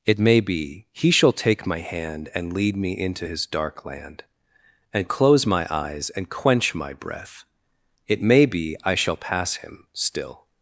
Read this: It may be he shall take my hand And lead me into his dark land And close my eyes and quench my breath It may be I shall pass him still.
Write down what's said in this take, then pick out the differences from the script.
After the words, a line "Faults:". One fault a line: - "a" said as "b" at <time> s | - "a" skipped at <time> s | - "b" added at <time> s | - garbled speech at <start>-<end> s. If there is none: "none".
It may be he shall take my hand And lead me into his dark land And close my eyes and quench my breath It may be I shall pass him still.
Faults:
none